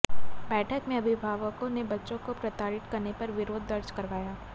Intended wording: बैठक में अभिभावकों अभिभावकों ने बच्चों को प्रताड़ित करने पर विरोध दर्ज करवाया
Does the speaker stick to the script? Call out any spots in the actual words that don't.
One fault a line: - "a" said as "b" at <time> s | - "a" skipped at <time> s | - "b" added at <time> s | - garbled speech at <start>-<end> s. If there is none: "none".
- "अभिभावकों" skipped at 1.7 s